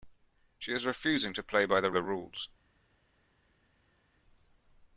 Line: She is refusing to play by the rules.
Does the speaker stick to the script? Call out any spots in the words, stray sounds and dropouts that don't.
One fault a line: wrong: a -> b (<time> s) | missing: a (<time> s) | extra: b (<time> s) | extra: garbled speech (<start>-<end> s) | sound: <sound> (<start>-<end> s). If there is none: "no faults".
extra: the (1.9 s)